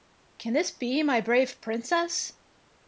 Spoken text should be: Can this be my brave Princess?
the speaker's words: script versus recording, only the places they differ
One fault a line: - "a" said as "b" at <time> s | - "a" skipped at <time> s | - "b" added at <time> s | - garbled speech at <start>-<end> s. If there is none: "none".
none